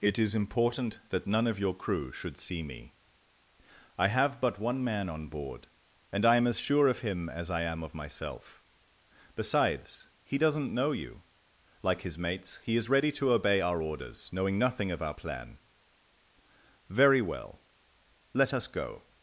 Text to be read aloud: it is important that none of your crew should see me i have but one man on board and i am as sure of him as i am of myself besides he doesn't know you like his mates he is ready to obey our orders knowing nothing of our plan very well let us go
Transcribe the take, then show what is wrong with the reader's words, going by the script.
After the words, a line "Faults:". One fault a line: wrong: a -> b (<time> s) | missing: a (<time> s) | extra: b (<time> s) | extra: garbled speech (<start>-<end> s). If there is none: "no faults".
it is important that none of your crew should see me i have but one man on board and i am as sure of him as i am of myself besides he doesn't know you like his mates he is ready to obey our orders knowing nothing of our plan very well let us go
Faults:
no faults